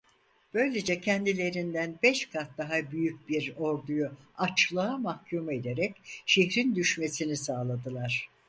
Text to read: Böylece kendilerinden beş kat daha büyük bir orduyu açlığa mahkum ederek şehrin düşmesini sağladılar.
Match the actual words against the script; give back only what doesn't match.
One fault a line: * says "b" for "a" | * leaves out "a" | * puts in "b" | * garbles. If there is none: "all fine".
all fine